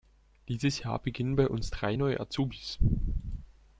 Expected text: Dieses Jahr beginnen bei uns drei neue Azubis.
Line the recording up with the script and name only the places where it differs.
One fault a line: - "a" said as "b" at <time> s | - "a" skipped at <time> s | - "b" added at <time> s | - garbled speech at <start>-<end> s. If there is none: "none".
none